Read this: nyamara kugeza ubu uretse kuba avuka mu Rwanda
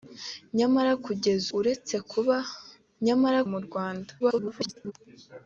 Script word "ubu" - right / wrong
wrong